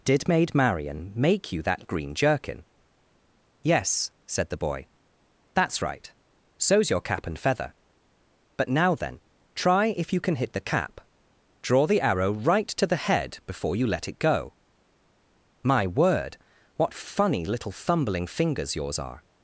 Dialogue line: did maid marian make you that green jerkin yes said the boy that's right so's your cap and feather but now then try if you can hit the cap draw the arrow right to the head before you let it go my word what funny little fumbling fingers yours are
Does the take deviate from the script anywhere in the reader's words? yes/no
no